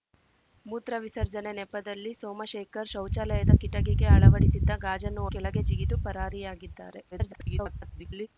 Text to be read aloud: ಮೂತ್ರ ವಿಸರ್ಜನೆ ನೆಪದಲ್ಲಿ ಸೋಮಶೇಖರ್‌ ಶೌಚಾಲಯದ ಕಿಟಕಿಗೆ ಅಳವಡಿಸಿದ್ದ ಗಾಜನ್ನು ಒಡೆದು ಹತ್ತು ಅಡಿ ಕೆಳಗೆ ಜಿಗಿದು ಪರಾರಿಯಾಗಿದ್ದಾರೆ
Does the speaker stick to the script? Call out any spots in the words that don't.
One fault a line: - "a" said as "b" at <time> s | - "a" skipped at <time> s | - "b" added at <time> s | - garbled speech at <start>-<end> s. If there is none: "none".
- "ಒಡೆದು ಹತ್ತು ಅಡಿ" skipped at 5.2 s
- garbled speech at 7.1-8.3 s